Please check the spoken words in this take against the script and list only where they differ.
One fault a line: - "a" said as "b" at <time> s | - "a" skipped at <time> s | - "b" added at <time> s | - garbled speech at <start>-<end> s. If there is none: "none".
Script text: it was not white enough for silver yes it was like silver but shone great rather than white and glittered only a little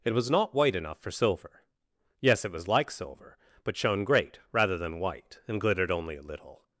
none